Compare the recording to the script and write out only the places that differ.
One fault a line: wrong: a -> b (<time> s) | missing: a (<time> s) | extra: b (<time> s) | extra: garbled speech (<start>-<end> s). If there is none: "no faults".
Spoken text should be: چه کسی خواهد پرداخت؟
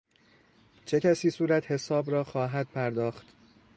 extra: صورتحساب را (1.3 s)